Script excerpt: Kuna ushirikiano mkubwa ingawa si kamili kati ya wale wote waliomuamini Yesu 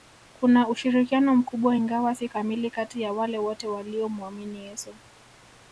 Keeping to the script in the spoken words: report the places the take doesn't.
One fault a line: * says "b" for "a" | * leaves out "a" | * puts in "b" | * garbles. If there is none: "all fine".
all fine